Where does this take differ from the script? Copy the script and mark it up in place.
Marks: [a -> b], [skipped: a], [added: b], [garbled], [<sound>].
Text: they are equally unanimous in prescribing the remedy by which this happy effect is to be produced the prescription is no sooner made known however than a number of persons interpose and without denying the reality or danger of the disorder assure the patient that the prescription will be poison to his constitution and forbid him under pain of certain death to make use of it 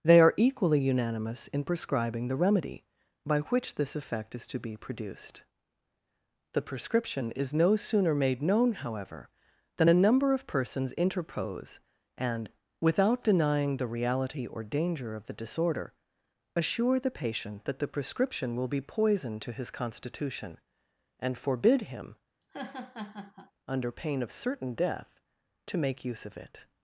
they are equally unanimous in prescribing the remedy by which this [skipped: happy] effect is to be produced the prescription is no sooner made known however than a number of persons interpose and without denying the reality or danger of the disorder assure the patient that the prescription will be poison to his constitution and forbid him [laugh] under pain of certain death to make use of it